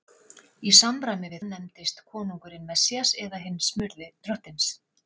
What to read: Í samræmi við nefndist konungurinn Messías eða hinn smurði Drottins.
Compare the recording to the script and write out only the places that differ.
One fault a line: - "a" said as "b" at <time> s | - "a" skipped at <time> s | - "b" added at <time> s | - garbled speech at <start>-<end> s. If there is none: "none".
none